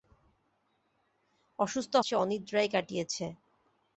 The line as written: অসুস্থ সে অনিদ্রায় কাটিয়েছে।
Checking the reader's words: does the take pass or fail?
pass